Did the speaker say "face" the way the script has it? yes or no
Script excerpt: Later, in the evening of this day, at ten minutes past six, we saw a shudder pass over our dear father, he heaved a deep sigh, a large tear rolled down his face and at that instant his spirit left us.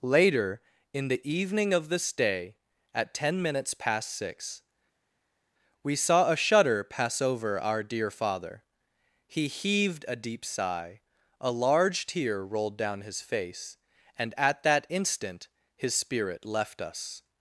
yes